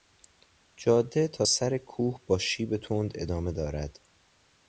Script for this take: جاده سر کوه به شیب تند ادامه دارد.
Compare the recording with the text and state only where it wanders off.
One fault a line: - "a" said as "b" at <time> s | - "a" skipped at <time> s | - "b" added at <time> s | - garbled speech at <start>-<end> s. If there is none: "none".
- "تا" added at 1.3 s
- "به" said as "با" at 2.3 s